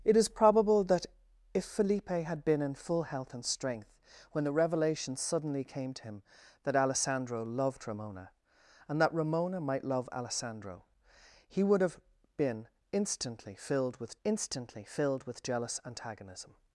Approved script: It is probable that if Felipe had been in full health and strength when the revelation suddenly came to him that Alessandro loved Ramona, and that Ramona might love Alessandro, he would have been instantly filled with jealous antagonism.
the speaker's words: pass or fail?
fail